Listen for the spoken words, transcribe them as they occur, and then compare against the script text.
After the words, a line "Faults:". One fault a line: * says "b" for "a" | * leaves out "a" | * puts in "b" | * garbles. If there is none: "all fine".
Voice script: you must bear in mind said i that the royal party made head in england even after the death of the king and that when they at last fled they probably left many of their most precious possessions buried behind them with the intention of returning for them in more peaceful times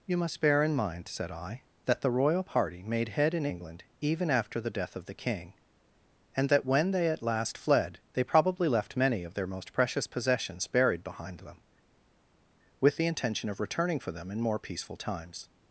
you must bear in mind said i that the royal party made head in england even after the death of the king and that when they at last fled they probably left many of their most precious possessions buried behind them with the intention of returning for them in more peaceful times
Faults:
all fine